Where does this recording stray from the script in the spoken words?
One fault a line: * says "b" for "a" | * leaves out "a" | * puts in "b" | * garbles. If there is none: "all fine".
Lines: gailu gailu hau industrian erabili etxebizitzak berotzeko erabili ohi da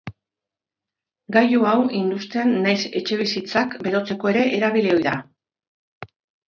* leaves out "gailu"
* says "nahiz" for "erabili"
* puts in "ere"